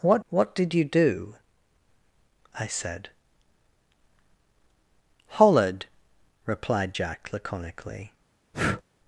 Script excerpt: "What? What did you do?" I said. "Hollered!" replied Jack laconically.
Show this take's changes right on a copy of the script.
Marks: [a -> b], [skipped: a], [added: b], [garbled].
"What? What did you do?" I said. "Hollered!" replied Jack laconically.